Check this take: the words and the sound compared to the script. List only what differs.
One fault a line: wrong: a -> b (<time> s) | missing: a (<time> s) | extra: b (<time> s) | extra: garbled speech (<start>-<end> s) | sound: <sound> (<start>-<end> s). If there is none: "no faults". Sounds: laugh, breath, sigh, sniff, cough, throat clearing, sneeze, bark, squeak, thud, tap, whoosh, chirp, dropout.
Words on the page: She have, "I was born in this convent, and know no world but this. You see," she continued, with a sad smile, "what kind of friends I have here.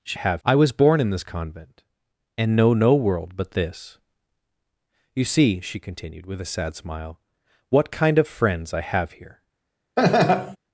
sound: laugh (10.0-10.6 s)